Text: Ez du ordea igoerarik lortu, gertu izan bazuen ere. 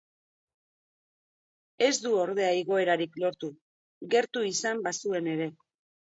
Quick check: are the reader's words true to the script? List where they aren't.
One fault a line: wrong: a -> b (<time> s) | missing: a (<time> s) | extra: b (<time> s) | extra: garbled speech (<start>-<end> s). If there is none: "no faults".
no faults